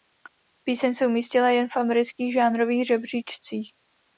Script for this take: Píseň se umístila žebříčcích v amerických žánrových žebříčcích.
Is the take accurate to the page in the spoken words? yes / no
no